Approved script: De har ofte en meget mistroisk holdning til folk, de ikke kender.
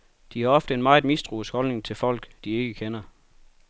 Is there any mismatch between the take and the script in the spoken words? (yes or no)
no